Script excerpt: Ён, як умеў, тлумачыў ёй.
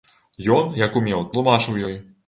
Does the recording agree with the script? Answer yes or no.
yes